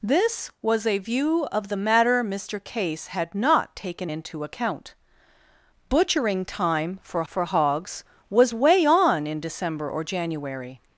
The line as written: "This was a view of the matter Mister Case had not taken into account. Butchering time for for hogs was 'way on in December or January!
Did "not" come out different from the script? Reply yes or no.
no